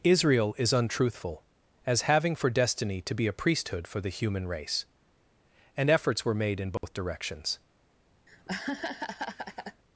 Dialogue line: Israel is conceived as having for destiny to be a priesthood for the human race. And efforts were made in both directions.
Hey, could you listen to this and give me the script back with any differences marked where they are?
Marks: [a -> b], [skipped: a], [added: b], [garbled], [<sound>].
Israel is [conceived -> untruthful] as having for destiny to be a priesthood for the human race. And efforts were made in both [dropout] directions. [laugh]